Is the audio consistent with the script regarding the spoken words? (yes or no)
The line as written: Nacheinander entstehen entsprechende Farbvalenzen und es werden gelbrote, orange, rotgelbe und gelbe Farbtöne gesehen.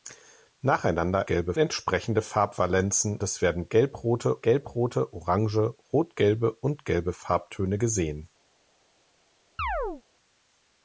no